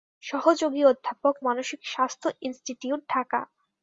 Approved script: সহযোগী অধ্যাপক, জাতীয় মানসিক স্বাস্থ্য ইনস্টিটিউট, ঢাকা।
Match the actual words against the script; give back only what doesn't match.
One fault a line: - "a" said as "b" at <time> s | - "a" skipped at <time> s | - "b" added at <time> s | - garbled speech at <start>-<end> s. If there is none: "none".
- "জাতীয়" skipped at 1.3 s